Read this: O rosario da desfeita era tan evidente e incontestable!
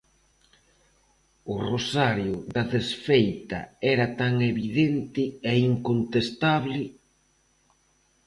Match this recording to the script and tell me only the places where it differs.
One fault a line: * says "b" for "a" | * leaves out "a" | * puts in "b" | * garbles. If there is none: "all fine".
all fine